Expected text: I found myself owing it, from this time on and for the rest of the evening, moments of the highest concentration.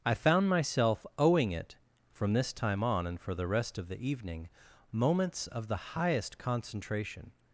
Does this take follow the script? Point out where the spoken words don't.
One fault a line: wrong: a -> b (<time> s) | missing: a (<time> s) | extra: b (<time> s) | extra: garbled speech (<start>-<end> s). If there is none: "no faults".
no faults